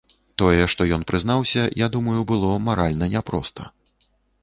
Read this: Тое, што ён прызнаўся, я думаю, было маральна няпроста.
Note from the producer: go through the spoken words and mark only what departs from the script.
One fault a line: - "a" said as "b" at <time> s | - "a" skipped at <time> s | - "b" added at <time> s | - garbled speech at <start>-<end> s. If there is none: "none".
none